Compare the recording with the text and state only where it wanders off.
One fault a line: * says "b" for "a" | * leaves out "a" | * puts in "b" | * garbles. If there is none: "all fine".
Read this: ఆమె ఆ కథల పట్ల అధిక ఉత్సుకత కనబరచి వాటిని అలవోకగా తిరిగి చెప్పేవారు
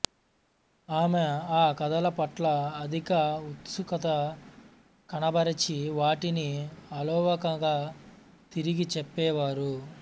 all fine